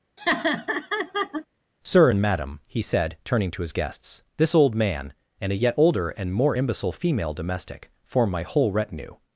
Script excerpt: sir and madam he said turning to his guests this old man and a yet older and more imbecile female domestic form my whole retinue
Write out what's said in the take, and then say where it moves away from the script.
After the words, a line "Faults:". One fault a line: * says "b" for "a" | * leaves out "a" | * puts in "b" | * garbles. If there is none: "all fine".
sir and madam he said turning to his guests this old man and a yet older and more imbecile female domestic form my whole retinue
Faults:
all fine